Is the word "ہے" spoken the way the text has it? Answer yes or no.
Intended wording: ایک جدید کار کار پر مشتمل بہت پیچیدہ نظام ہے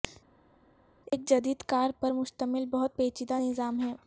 yes